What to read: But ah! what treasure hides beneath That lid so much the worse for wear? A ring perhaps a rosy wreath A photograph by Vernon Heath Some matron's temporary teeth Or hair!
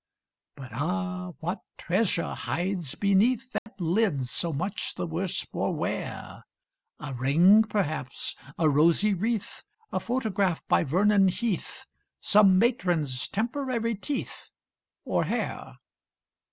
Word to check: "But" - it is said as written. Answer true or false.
true